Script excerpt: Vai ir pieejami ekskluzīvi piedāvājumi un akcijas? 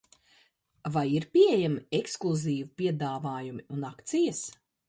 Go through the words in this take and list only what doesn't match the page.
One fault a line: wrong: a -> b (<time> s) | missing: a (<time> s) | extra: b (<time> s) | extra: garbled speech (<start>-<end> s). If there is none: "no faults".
no faults